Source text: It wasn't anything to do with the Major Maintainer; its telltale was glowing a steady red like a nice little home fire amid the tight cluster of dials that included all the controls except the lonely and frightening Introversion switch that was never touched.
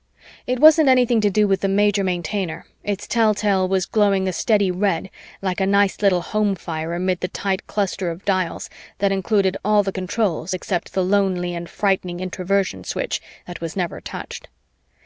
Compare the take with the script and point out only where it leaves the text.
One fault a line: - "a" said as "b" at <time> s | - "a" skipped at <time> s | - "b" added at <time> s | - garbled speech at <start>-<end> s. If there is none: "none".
none